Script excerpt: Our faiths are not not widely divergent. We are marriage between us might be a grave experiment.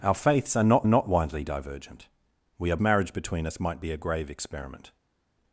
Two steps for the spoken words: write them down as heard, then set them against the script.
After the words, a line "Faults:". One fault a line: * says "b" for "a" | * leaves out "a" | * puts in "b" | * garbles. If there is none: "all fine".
Our faiths are not not widely divergent. We are marriage between us might be a grave experiment.
Faults:
all fine